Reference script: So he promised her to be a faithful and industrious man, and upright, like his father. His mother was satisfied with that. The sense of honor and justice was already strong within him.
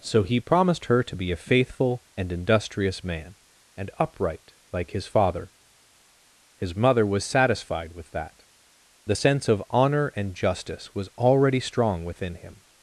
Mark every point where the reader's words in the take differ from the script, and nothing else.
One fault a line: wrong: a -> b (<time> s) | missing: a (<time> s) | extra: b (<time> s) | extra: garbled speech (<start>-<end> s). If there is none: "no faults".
no faults